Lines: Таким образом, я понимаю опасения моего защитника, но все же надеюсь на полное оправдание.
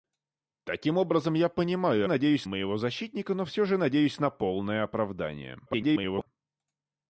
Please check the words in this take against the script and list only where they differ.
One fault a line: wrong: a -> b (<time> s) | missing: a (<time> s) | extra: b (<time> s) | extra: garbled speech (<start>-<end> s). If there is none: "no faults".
wrong: опасения -> надеюсь (2.1 s)
extra: garbled speech (5.7-6.3 s)